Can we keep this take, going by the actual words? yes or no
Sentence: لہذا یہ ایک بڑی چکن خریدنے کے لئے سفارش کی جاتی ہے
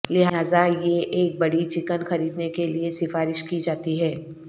yes